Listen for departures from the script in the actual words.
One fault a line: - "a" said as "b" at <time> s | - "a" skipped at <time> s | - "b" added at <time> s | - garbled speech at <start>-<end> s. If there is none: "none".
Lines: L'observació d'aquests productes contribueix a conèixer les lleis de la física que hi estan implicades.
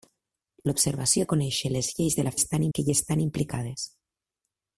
- "d'aquests productes contribueix" skipped at 1.2 s
- "física" said as "estan" at 2.4 s